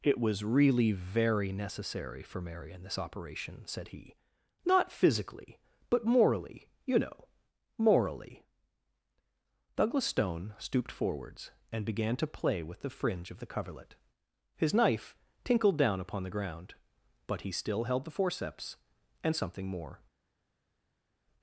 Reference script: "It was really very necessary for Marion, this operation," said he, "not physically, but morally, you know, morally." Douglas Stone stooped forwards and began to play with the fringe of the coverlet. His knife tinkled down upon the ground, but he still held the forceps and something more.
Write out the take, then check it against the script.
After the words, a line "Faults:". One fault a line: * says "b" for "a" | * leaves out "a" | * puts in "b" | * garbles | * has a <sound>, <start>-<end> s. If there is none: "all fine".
"It was really very necessary for Marion, this operation," said he, "not physically, but morally, you know, morally." Douglas Stone stooped forwards and began to play with the fringe of the coverlet. His knife tinkled down upon the ground, but he still held the forceps and something more.
Faults:
all fine